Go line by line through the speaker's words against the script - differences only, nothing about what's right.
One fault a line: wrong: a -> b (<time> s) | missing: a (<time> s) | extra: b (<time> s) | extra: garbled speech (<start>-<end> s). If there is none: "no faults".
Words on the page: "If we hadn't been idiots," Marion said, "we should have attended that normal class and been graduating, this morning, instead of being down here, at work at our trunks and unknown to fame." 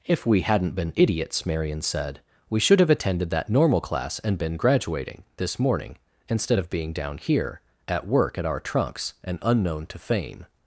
no faults